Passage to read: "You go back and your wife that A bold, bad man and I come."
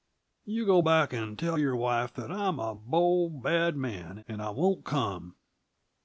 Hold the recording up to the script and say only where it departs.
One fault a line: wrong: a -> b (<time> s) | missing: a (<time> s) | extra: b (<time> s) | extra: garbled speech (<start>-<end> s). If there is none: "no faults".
extra: tell (1.4 s)
extra: I'm (2.3 s)
extra: won't (4.5 s)